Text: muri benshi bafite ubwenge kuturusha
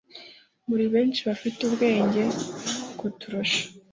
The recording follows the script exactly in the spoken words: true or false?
true